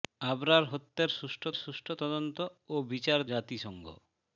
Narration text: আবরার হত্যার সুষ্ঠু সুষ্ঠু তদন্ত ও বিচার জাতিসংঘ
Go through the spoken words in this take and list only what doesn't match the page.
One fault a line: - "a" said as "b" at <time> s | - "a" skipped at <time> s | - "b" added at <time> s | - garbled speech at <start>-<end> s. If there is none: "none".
none